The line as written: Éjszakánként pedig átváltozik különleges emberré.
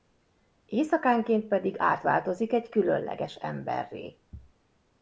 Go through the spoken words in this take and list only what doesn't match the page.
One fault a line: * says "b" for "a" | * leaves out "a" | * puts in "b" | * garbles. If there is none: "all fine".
* puts in "egy"